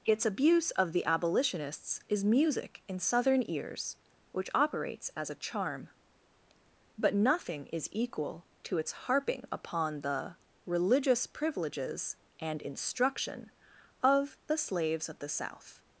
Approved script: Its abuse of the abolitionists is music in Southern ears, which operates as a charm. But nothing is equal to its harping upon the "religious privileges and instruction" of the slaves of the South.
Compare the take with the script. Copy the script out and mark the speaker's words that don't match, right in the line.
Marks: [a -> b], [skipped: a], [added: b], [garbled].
Its abuse of the abolitionists is music in Southern ears, which operates as a charm. But nothing is equal to its harping upon the "religious privileges and instruction" of the slaves of the South.